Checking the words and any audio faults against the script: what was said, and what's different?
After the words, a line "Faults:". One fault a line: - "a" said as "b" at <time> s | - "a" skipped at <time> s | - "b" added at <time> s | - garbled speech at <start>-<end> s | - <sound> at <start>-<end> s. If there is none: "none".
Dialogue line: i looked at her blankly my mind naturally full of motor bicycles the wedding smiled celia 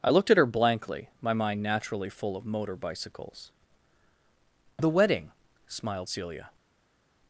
i looked at her blankly my mind naturally full of motor bicycles the wedding smiled celia
Faults:
none